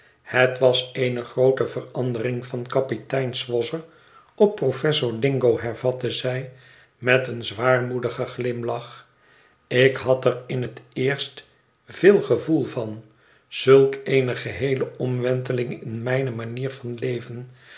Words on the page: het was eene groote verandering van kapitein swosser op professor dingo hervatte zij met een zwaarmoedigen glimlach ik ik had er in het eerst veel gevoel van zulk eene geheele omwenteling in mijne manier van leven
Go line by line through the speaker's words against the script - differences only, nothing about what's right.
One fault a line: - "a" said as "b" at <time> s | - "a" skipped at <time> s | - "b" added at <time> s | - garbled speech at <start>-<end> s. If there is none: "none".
- "ik" skipped at 10.0 s